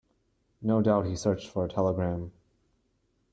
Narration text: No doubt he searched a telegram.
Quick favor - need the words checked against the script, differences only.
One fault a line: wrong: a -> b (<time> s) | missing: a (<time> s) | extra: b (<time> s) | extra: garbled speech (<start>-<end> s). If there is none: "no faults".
extra: for (1.5 s)